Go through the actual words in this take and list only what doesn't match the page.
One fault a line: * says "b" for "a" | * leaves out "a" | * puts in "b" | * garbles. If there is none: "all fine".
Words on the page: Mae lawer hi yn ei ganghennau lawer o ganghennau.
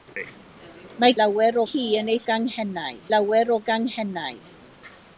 all fine